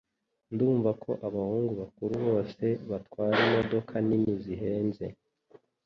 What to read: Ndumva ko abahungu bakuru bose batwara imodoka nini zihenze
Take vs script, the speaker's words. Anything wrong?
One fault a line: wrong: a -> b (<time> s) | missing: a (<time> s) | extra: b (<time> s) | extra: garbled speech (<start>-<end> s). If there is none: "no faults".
no faults